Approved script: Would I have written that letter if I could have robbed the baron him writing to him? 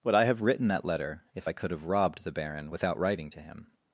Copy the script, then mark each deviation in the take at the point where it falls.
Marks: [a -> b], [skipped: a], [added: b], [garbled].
Would I have written that letter if I could have robbed the baron [him -> without] writing to him?